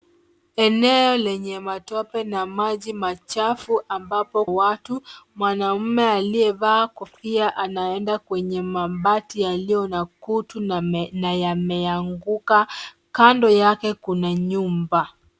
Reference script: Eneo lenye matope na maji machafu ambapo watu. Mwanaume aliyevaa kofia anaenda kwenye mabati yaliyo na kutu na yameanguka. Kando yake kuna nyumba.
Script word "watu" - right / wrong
right